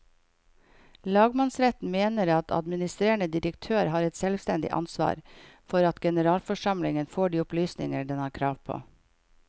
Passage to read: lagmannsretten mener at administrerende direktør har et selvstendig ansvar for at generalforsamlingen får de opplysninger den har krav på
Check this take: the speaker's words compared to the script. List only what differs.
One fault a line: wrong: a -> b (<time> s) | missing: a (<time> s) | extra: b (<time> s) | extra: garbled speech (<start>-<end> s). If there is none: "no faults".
no faults